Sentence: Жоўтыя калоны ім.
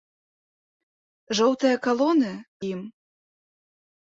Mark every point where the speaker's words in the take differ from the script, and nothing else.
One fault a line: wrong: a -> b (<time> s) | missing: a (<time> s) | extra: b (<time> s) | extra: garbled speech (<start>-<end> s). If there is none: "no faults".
no faults